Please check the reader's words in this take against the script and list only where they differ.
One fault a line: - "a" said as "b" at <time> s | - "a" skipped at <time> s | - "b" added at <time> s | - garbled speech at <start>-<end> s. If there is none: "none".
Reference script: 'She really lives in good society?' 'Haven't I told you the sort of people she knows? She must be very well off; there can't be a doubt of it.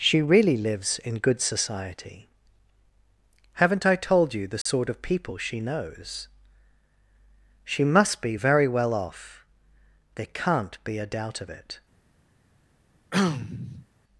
none